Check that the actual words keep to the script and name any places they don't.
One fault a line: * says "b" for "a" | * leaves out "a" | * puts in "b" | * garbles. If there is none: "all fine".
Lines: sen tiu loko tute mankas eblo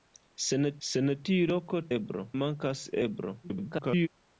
* puts in "sen"
* says "eblo" for "tute"
* garbles